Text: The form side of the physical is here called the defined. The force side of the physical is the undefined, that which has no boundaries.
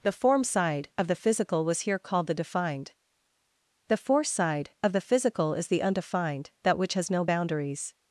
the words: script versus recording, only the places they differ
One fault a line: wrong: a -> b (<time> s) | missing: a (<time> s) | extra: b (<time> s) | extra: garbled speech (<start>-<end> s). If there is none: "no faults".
wrong: is -> was (1.6 s)